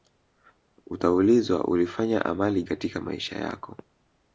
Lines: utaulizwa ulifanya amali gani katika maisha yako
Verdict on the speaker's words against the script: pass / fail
fail